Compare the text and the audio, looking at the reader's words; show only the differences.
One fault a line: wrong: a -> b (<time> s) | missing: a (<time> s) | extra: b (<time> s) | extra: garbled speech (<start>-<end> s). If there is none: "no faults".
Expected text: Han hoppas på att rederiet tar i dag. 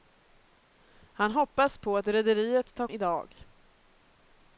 no faults